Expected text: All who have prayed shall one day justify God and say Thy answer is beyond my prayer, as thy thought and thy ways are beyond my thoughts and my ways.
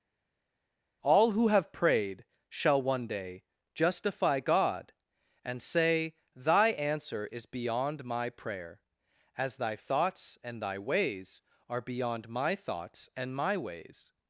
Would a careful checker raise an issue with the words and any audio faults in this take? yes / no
yes